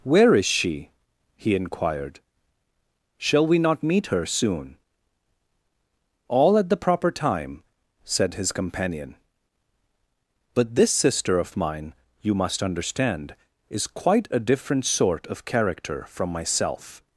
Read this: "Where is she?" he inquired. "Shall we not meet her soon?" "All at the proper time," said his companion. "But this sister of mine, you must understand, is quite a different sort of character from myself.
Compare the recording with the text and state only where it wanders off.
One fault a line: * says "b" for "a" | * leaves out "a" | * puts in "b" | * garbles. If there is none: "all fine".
all fine